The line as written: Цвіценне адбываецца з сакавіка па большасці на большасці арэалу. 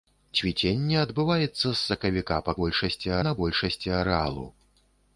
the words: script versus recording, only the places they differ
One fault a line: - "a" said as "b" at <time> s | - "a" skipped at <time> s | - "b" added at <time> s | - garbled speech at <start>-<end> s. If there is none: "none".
none